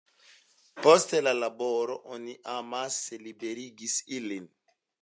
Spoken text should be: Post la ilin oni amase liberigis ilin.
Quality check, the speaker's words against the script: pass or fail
fail